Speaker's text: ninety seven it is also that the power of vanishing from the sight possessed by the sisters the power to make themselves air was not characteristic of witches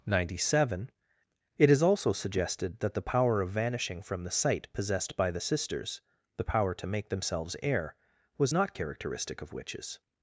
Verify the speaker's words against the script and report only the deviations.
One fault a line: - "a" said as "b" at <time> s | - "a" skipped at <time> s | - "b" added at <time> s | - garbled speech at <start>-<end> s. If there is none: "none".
- "suggested" added at 2.1 s